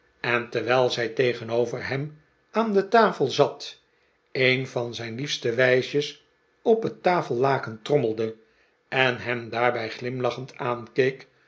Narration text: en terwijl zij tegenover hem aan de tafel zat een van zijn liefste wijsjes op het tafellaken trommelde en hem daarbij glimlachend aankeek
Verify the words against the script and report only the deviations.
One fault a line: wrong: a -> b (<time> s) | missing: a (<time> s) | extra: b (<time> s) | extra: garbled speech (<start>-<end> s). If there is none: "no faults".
no faults